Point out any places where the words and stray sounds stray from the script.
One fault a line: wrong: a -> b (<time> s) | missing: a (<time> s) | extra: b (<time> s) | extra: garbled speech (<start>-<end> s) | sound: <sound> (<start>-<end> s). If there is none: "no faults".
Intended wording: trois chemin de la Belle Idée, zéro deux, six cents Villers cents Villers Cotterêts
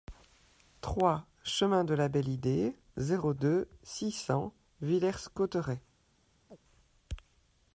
missing: cents Villers (5.3 s)
sound: chirp (6.5-6.6 s)